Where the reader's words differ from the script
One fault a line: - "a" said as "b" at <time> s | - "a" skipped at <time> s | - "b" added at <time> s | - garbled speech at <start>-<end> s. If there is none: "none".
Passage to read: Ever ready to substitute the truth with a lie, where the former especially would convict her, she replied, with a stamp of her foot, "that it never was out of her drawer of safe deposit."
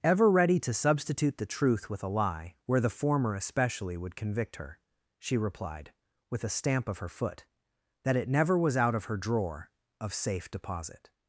none